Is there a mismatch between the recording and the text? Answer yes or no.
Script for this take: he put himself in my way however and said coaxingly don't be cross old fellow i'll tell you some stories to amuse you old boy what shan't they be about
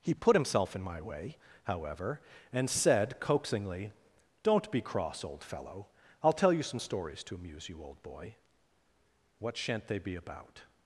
no